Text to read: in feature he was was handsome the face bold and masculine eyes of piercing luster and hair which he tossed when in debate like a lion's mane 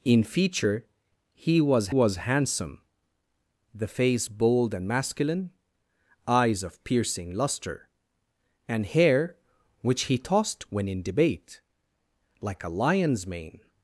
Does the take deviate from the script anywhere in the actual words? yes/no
no